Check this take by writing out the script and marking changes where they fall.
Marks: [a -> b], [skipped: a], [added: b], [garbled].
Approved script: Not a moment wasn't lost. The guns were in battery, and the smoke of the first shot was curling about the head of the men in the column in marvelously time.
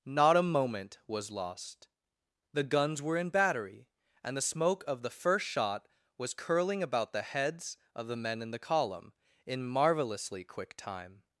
Not a moment [wasn't -> was] lost. The guns were in battery, and the smoke of the first shot was curling about the [head -> heads] of the men in the column in marvelously [added: quick] time.